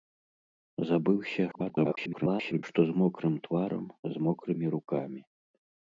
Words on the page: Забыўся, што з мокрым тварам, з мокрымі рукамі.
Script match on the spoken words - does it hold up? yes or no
no